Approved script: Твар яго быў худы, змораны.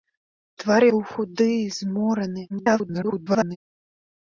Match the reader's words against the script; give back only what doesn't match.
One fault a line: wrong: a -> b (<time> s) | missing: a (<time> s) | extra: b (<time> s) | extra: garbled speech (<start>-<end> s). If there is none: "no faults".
missing: яго (0.8 s)
extra: garbled speech (2.5-3.6 s)